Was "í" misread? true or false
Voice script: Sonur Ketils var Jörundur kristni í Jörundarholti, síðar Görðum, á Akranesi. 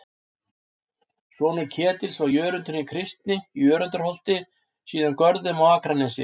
false